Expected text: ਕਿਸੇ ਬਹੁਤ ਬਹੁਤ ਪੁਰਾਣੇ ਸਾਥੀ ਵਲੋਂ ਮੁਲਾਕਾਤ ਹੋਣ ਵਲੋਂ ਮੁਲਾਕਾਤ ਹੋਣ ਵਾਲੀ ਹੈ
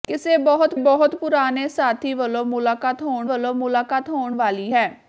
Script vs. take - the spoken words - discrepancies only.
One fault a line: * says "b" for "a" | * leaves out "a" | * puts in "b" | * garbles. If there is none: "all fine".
all fine